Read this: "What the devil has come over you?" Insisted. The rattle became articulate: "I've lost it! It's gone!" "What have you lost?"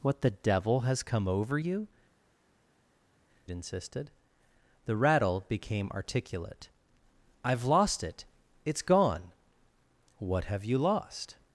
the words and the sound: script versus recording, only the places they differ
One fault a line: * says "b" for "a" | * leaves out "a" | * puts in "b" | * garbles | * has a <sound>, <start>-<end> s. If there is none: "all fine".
all fine